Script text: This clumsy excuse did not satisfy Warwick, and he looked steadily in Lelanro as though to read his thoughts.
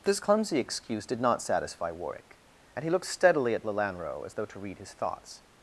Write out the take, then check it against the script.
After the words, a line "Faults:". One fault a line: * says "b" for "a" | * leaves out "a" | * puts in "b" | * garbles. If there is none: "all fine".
This clumsy excuse did not satisfy Warwick, and he looked steadily at Lelanro as though to read his thoughts.
Faults:
* says "at" for "in"